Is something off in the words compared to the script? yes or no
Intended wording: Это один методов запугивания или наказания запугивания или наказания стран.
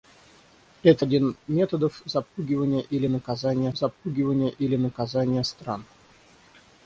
no